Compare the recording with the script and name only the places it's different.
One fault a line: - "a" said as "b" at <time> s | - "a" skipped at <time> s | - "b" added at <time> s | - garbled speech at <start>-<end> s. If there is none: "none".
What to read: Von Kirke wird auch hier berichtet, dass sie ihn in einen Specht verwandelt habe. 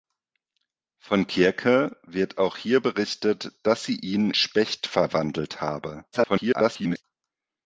- "in einen" skipped at 4.3 s
- garbled speech at 6.1-7.0 s